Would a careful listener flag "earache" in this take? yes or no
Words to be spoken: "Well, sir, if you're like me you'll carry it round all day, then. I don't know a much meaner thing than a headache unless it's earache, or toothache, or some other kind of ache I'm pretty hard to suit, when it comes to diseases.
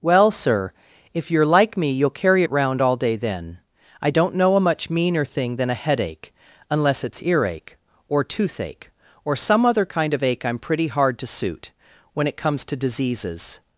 no